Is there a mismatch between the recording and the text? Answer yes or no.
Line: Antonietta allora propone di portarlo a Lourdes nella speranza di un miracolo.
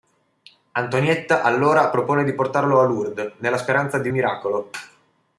yes